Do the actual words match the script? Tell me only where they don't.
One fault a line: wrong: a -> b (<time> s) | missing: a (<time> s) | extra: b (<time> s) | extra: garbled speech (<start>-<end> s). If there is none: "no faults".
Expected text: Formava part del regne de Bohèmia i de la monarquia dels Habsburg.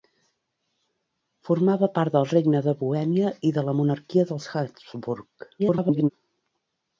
extra: garbled speech (5.6-6.1 s)